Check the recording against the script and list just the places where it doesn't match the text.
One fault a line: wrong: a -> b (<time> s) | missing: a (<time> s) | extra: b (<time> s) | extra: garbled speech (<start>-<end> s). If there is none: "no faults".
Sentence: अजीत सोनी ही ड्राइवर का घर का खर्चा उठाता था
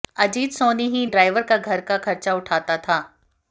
no faults